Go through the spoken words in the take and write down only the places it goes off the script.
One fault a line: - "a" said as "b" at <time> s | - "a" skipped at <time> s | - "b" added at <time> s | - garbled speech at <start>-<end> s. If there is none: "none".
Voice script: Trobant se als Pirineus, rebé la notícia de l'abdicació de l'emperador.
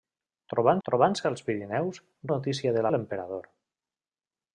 - "trobant" added at 0.9 s
- "rebé la" skipped at 2.0 s
- "l'abdicació" skipped at 2.9 s